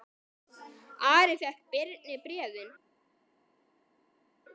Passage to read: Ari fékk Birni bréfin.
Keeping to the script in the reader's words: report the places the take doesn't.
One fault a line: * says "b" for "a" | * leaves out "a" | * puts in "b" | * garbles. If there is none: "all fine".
all fine